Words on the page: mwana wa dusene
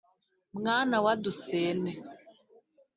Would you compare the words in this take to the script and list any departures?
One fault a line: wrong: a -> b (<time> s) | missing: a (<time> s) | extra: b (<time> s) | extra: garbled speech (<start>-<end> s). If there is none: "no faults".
no faults